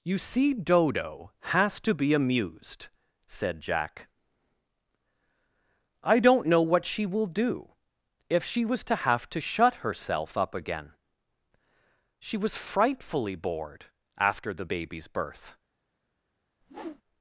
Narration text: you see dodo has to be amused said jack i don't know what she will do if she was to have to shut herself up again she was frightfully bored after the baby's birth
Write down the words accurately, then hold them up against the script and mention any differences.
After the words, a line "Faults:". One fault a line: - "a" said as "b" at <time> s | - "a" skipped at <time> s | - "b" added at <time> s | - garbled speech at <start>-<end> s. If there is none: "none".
you see dodo has to be amused said jack i don't know what she will do if she was to have to shut herself up again she was frightfully bored after the baby's birth
Faults:
none